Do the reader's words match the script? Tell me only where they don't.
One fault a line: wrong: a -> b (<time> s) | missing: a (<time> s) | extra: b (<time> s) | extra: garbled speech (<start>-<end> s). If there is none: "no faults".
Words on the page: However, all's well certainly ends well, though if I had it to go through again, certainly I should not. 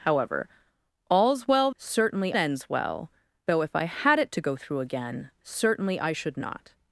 no faults